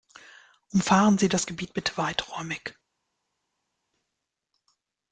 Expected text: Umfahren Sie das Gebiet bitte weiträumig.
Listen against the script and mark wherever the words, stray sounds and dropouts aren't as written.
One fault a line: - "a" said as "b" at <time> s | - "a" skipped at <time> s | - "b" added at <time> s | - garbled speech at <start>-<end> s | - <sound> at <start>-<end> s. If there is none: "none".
none